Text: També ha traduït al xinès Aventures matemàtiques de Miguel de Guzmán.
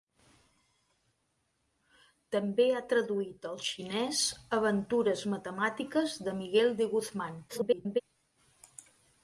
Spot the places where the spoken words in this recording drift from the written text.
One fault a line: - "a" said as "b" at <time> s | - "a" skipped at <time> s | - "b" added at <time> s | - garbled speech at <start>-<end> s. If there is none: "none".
- garbled speech at 7.5-8.0 s